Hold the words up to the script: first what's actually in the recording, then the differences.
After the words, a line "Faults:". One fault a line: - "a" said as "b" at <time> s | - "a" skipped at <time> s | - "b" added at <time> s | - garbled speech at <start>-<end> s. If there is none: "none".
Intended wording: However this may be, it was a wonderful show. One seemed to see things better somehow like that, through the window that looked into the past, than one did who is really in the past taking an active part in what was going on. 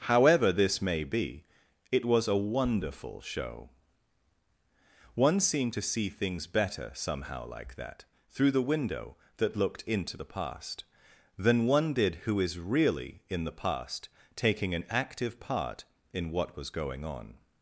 However this may be, it was a wonderful show. One seemed to see things better somehow like that, through the window that looked into the past, than one did who is really in the past taking an active part in what was going on.
Faults:
none